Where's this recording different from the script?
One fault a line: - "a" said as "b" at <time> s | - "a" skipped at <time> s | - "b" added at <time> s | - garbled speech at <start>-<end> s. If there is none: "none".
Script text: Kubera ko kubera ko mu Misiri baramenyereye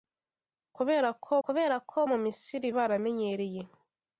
none